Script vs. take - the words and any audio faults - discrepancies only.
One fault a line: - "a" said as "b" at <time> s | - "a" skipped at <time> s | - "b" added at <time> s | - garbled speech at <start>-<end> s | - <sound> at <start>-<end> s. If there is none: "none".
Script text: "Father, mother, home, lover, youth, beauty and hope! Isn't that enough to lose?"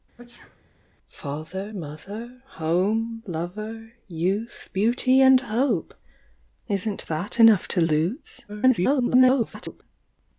- sneeze at 0.2-0.7 s
- garbled speech at 8.5-9.8 s